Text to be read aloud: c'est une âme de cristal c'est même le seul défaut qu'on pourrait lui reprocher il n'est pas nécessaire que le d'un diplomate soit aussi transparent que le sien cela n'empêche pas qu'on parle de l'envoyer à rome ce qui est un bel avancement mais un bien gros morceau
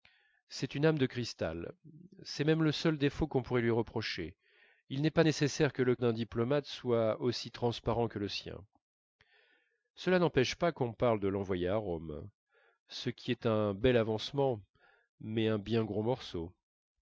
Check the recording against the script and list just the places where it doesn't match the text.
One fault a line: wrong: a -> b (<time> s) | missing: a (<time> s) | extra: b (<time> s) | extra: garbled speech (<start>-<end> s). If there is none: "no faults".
no faults